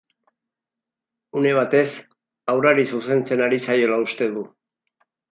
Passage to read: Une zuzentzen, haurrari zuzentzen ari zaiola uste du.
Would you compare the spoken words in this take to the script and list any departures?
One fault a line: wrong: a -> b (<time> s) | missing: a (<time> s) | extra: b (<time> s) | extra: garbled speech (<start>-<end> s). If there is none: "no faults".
wrong: zuzentzen -> batez (1.6 s)